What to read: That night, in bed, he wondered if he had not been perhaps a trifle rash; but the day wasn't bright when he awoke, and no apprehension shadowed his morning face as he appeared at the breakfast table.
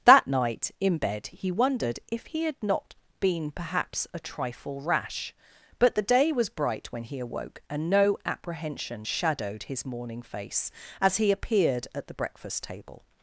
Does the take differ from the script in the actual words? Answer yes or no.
yes